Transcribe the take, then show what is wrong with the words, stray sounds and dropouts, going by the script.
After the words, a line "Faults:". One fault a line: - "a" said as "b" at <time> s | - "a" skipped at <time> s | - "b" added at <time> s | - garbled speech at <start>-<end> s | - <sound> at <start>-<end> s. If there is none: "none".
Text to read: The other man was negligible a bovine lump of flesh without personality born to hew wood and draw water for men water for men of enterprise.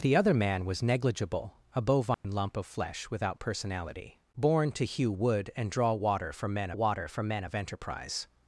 The other man was negligible a bovine lump of flesh without personality born to hew wood and draw water for men water for men of enterprise.
Faults:
- dropout at 2.1-2.2 s